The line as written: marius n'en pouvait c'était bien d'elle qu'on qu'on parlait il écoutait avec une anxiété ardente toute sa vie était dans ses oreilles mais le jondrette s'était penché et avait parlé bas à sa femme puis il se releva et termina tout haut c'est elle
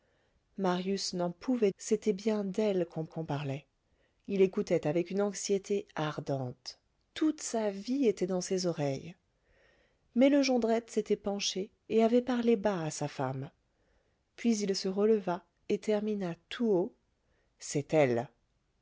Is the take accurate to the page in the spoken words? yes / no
yes